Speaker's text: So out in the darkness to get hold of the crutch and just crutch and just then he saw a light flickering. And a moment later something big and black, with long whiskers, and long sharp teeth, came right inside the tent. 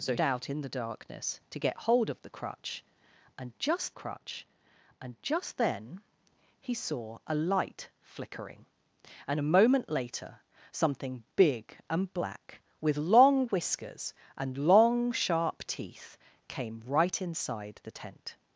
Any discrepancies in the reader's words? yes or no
no